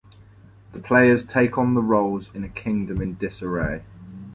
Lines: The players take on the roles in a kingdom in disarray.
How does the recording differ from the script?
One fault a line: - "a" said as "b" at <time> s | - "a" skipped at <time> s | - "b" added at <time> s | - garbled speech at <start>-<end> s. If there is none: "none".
none